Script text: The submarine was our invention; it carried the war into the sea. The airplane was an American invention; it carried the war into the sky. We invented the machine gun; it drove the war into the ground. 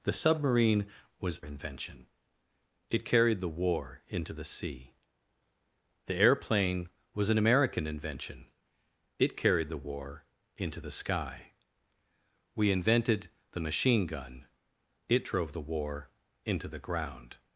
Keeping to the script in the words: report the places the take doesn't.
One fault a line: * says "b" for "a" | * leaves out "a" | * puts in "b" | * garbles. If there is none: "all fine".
* leaves out "our"